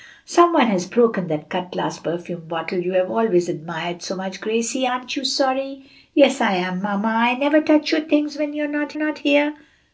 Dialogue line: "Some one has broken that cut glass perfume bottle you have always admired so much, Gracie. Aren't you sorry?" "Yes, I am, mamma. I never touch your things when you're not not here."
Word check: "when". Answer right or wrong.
right